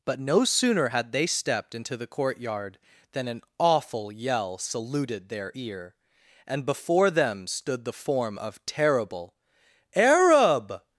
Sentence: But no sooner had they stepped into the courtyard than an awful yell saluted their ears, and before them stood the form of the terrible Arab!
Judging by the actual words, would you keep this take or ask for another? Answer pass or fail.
fail